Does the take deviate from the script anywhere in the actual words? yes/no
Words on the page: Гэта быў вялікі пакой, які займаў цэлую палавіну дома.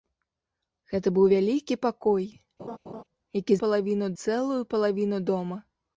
yes